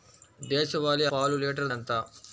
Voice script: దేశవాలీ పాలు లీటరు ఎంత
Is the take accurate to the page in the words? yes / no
yes